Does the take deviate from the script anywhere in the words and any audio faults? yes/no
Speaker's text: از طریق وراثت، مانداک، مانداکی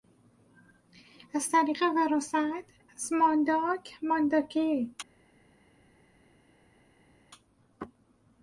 yes